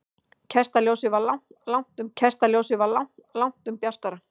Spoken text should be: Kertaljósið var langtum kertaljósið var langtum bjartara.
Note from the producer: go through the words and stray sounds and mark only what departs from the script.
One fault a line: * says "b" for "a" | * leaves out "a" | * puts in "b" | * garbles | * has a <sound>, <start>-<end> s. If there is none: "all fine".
all fine